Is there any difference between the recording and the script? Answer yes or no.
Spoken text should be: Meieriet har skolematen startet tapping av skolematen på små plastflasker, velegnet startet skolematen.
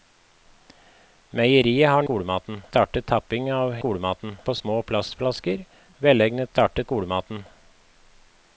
no